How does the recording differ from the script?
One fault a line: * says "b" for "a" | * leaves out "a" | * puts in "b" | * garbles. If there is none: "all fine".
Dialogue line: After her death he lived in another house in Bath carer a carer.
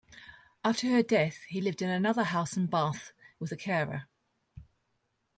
* says "with" for "carer"